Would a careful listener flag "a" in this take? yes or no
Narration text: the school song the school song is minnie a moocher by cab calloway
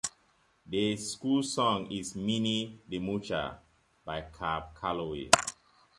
yes